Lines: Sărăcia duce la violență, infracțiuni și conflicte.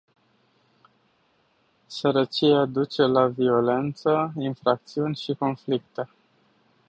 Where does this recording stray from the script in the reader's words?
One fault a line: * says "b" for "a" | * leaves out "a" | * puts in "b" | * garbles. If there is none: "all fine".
all fine